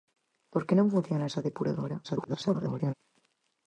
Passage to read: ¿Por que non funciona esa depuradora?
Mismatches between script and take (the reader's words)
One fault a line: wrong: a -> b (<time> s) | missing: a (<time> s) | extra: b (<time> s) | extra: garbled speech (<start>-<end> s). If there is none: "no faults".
extra: garbled speech (2.0-2.9 s)